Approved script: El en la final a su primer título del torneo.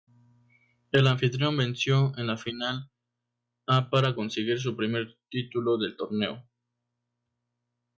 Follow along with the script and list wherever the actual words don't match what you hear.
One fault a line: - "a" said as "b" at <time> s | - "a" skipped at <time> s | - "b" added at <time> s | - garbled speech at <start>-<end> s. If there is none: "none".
- "anfitrión venció" added at 1.1 s
- "para conseguir" added at 3.9 s